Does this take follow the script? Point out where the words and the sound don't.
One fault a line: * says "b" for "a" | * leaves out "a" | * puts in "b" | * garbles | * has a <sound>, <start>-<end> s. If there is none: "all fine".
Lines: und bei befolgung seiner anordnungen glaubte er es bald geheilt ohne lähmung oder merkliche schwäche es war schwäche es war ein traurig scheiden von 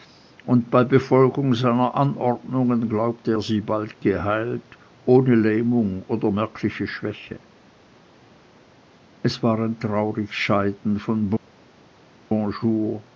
* says "sie" for "es"
* leaves out "schwäche es war"